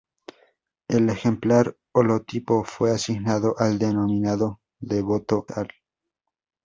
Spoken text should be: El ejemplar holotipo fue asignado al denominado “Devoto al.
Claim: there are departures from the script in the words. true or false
false